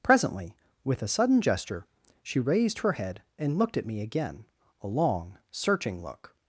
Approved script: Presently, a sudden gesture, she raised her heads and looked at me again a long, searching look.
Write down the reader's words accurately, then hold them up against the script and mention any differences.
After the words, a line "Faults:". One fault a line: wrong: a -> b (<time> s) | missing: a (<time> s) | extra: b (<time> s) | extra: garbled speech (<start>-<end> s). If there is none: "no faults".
Presently, with a sudden gesture, she raised her head and looked at me again a long, searching look.
Faults:
extra: with (0.8 s)
wrong: heads -> head (2.9 s)